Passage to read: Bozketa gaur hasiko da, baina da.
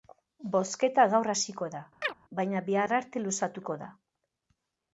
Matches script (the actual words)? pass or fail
fail